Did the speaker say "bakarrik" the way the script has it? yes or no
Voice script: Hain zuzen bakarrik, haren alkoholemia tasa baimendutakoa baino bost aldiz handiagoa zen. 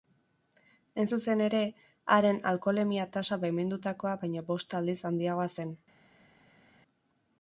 no